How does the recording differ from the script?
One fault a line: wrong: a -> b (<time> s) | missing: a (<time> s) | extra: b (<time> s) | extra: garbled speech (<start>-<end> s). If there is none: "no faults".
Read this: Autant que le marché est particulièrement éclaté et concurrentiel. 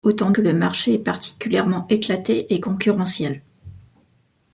no faults